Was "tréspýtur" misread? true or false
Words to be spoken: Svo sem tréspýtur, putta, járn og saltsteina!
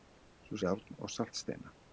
true